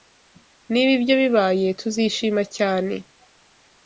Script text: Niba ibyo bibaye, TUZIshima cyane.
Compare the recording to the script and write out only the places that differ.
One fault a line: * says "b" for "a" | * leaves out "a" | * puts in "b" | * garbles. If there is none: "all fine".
all fine